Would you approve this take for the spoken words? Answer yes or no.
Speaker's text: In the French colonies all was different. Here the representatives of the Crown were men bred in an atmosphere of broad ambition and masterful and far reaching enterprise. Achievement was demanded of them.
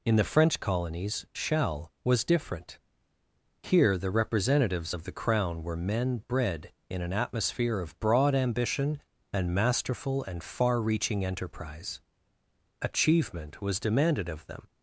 no